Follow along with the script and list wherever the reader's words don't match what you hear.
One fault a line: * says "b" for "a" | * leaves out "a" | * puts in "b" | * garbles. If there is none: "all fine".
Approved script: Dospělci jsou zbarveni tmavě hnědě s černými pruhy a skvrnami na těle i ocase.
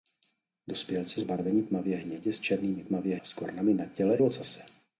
* leaves out "jsou"
* says "tmavě" for "pruhy"
* leaves out "i"